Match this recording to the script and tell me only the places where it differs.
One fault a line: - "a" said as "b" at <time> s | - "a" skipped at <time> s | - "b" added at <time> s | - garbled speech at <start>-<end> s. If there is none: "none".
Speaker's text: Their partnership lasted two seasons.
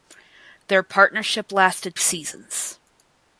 - "two" skipped at 1.9 s